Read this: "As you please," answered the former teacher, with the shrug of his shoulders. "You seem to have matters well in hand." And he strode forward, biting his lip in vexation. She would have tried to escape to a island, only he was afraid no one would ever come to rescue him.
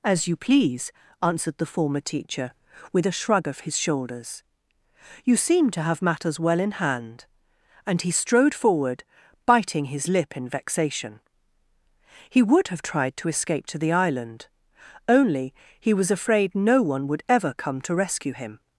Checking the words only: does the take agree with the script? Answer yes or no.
no